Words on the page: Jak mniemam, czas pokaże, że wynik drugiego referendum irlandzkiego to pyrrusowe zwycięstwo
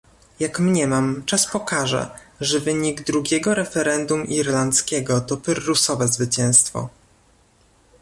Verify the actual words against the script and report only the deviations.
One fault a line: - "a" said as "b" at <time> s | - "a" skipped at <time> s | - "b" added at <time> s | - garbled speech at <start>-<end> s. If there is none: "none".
none